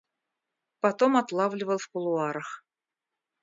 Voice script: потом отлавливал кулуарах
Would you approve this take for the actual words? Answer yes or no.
no